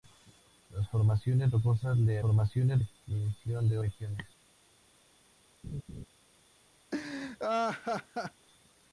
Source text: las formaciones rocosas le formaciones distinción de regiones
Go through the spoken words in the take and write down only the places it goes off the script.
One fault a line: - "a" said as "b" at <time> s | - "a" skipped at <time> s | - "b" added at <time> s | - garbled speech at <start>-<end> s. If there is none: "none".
none